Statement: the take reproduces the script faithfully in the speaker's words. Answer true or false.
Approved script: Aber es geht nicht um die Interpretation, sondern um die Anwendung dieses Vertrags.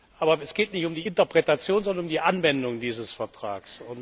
true